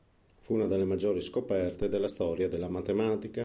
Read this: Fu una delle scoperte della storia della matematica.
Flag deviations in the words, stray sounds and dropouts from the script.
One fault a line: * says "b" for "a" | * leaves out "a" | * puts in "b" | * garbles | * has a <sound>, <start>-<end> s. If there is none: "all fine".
* puts in "maggiori"